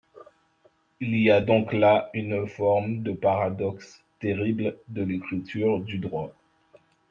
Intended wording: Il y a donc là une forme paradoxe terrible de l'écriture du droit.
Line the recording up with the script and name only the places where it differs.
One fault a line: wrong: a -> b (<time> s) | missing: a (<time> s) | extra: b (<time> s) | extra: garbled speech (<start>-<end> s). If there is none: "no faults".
extra: de (3.0 s)